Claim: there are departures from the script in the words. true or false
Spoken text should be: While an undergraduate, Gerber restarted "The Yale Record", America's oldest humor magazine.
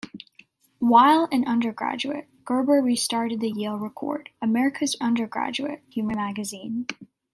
true